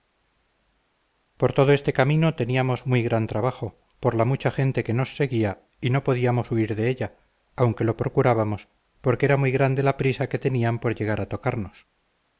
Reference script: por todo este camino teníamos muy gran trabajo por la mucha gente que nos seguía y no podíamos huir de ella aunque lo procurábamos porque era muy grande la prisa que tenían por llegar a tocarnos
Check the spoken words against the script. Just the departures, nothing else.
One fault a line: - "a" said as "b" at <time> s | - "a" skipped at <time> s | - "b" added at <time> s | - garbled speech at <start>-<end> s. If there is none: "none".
none